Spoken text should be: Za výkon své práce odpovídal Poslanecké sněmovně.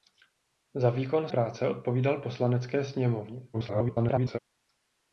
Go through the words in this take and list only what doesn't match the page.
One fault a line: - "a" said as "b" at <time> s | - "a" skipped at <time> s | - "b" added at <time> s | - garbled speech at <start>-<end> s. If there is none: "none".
- "své" skipped at 1.3 s
- garbled speech at 3.5-4.4 s